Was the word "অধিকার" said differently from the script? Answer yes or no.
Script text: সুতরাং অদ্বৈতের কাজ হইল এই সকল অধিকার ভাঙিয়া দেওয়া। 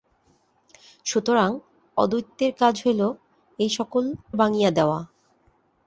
yes